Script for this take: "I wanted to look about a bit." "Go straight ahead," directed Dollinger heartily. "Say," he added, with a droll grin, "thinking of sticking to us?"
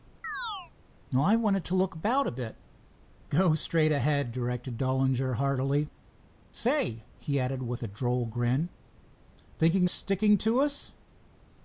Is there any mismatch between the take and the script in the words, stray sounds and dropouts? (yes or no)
yes